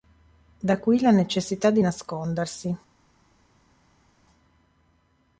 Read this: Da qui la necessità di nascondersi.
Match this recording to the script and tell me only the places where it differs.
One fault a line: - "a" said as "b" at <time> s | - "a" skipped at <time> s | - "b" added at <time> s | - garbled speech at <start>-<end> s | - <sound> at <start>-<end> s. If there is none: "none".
none